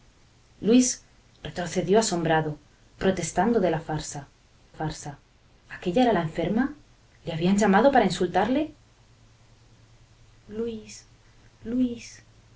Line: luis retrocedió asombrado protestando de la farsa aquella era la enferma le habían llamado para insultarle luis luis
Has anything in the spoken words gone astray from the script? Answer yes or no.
yes